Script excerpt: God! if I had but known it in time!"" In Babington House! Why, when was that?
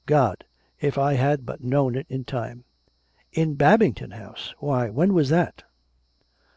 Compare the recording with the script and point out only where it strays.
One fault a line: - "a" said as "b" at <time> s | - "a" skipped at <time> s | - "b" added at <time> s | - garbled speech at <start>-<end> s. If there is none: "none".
none